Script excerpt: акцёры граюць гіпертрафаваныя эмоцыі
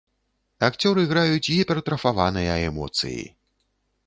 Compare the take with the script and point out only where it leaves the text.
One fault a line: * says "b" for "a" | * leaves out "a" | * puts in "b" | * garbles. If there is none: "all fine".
all fine